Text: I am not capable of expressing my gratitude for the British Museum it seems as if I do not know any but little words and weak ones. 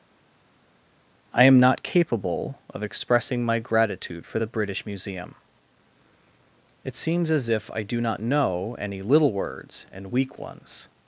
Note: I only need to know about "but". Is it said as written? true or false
false